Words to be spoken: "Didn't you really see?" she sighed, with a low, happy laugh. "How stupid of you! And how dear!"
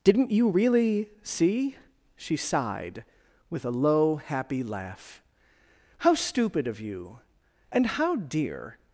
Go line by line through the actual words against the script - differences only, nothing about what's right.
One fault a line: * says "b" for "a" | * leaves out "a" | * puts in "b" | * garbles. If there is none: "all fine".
all fine